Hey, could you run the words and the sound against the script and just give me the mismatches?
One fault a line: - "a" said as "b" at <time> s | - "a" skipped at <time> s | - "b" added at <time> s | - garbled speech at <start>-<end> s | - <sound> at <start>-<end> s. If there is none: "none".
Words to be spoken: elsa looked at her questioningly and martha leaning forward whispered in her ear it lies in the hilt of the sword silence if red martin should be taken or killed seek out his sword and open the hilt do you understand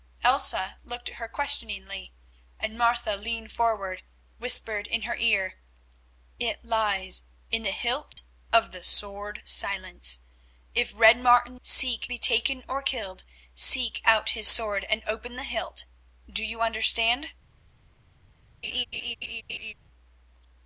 - dropout at 8.1-8.2 s
- "should" said as "seek" at 11.6 s
- laugh at 18.6-19.7 s